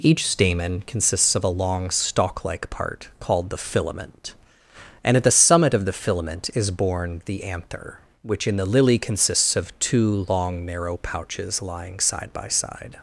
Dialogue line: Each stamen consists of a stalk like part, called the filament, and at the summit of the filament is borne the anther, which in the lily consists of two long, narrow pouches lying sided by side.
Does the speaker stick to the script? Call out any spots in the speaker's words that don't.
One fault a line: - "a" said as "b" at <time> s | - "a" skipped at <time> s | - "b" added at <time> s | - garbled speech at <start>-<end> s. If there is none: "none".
- "long" added at 1.5 s
- "sided" said as "side" at 12.0 s